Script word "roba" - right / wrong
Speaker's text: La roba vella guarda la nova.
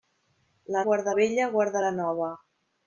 wrong